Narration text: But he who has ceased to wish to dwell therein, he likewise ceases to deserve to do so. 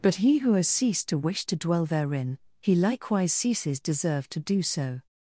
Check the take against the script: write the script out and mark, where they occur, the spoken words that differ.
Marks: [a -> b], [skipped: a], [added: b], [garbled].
But he who has ceased to wish to dwell therein, he likewise ceases [skipped: to] deserve to do so.